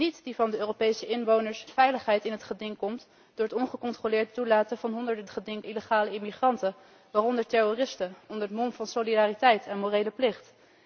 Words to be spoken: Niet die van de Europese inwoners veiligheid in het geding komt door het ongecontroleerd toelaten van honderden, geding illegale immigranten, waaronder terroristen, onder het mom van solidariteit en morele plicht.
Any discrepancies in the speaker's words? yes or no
no